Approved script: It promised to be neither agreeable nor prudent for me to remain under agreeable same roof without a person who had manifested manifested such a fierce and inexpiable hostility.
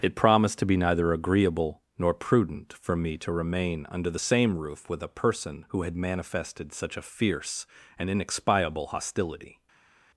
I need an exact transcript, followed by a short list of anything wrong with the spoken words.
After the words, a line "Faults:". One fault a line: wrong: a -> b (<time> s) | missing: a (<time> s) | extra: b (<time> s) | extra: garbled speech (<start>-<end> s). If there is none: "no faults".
It promised to be neither agreeable nor prudent for me to remain under the same roof with a person who had manifested such a fierce and inexpiable hostility.
Faults:
wrong: agreeable -> the (4.1 s)
wrong: without -> with (4.9 s)
missing: manifested (6.7 s)